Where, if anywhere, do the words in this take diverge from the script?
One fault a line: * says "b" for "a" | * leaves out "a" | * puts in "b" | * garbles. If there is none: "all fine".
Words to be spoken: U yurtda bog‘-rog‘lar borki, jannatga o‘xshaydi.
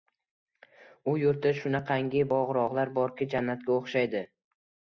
* puts in "shunaqangi"